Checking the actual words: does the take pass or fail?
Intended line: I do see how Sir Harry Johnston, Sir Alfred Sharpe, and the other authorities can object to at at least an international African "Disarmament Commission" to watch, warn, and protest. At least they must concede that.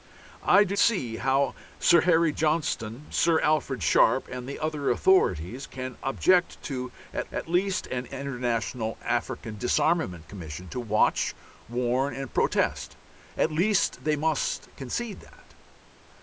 pass